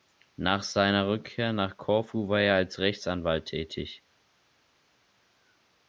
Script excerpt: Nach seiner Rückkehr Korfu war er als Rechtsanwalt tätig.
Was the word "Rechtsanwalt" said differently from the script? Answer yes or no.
no